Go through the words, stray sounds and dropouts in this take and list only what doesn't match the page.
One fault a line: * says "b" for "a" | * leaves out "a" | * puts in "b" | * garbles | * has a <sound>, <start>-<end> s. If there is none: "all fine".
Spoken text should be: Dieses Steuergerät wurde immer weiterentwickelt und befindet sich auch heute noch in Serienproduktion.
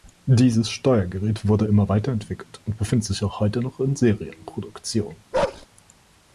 * has a bark, 5.3-5.7 s